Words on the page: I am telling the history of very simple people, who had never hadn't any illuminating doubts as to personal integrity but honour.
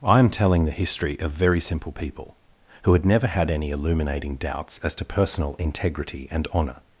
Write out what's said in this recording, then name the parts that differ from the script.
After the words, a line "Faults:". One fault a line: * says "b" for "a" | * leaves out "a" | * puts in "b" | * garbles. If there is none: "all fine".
I am telling the history of very simple people, who had never had any illuminating doubts as to personal integrity and honour.
Faults:
* says "had" for "hadn't"
* says "and" for "but"